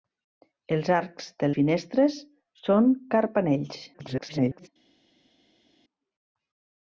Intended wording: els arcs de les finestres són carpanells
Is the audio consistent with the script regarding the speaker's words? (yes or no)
no